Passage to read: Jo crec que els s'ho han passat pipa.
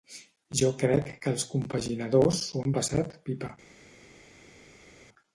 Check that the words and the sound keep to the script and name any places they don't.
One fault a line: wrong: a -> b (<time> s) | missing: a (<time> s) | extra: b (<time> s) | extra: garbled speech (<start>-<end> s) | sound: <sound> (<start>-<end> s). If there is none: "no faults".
extra: compaginadors (1.5 s)